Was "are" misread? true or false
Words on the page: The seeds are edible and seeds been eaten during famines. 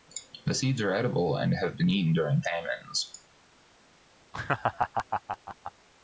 false